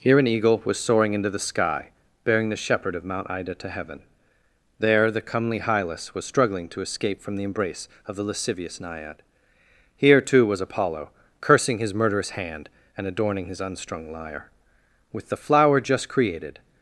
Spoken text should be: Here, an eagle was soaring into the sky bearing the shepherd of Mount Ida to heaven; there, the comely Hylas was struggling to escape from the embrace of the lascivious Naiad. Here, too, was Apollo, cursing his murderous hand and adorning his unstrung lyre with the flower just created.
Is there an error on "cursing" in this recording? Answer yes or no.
no